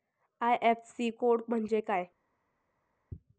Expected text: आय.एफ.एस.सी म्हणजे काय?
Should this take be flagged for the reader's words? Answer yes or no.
yes